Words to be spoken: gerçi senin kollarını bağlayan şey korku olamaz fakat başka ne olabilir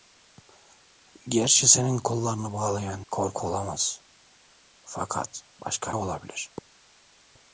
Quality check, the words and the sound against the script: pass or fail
fail